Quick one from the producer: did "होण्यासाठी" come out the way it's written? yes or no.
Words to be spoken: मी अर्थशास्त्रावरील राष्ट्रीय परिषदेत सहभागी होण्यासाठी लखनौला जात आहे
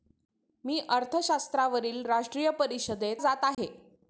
no